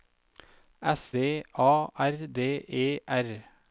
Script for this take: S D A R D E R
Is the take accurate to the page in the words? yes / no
yes